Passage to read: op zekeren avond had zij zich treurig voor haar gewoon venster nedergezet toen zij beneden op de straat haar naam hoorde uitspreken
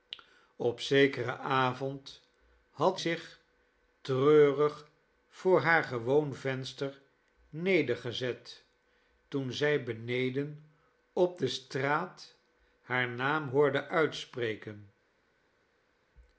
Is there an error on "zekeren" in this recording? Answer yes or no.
no